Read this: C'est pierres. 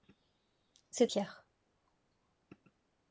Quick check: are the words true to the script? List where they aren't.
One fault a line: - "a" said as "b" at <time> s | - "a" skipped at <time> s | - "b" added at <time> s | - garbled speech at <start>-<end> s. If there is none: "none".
none